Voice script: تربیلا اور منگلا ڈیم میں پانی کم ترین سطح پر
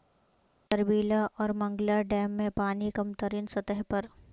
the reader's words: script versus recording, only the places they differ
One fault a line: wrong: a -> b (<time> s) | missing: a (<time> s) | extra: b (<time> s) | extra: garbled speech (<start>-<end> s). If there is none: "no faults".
no faults